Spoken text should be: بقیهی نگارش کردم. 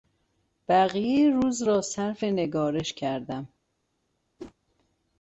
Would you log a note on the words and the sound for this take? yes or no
yes